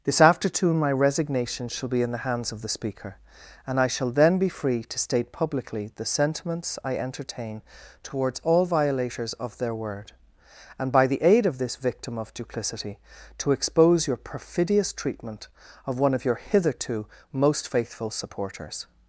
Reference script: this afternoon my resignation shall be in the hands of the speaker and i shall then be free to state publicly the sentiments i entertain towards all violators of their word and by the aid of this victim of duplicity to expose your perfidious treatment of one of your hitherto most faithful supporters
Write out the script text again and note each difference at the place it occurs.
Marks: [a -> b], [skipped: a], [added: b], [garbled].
this afternoon my resignation shall be in the hands of the speaker and i shall then be free to state publicly the sentiments i entertain towards all violators of their word and by the aid of this victim of duplicity to expose your perfidious treatment of one of your hitherto most faithful supporters